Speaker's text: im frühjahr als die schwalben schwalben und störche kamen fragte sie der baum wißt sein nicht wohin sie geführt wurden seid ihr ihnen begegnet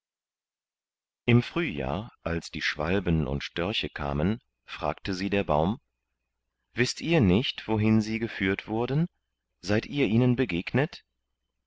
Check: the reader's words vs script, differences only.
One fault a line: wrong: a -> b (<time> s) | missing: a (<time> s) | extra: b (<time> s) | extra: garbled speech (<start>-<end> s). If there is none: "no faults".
missing: schwalben (3.3 s)
wrong: sein -> ihr (7.0 s)